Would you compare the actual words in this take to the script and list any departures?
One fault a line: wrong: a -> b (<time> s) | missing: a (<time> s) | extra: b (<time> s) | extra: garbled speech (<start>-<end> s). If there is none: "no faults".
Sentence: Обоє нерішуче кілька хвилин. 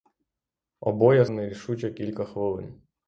no faults